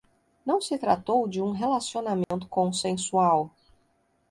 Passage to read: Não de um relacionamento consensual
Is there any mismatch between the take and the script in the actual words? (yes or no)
yes